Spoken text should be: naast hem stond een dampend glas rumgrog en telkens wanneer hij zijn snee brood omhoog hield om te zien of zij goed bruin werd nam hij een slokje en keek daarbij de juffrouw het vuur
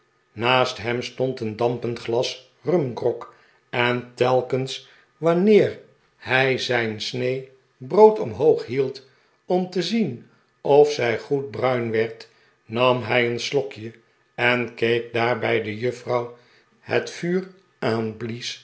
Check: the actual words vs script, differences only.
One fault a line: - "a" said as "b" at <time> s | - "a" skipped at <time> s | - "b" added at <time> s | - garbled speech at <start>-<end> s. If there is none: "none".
none